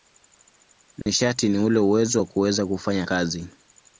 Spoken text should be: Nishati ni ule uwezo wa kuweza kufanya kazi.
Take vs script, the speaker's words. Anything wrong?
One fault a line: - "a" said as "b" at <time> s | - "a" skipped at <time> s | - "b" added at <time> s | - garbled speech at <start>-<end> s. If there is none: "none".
none